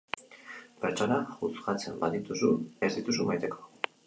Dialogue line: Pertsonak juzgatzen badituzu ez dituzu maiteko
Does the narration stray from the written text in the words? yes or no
no